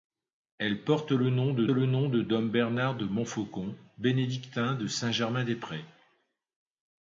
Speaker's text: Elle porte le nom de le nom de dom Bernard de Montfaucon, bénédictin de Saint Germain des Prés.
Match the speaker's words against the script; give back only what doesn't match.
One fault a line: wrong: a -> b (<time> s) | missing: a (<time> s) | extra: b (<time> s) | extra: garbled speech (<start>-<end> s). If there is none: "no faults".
no faults